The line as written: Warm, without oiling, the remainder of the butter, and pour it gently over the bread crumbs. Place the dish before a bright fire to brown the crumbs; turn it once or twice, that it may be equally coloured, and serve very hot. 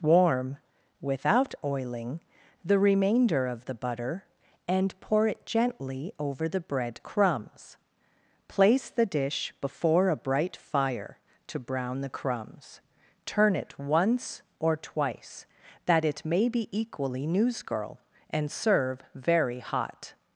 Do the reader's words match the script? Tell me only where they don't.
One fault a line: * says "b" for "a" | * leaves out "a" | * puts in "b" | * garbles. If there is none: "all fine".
* says "newsgirl" for "coloured"